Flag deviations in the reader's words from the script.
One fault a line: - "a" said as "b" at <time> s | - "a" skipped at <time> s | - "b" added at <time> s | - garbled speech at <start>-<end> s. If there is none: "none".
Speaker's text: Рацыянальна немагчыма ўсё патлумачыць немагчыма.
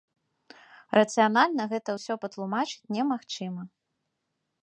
- "немагчыма" said as "гэта" at 1.8 s